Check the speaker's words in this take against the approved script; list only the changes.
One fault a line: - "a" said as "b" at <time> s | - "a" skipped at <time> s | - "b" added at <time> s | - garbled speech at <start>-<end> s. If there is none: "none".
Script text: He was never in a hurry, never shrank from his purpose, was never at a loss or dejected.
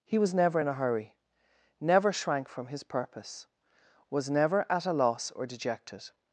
none